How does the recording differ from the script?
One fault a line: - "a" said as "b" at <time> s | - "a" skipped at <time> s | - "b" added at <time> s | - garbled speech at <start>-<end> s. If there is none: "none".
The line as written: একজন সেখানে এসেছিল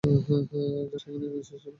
none